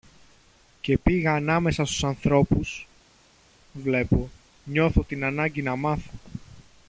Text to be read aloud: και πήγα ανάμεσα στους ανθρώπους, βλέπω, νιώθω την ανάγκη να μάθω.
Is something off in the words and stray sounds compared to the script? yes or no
no